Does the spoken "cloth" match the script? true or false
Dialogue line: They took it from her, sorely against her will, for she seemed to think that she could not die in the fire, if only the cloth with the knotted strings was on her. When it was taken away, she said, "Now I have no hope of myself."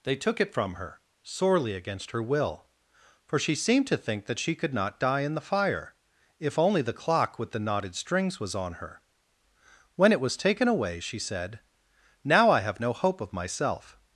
false